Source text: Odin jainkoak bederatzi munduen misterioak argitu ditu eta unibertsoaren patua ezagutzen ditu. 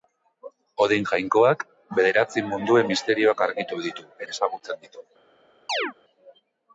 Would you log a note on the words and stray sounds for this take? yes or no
yes